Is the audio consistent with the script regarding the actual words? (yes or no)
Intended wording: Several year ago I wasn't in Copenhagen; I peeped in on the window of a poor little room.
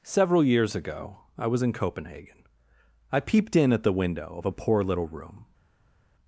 no